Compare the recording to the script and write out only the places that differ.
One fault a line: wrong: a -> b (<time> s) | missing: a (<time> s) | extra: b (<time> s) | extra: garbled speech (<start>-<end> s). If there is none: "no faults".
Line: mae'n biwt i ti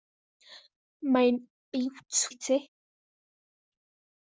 no faults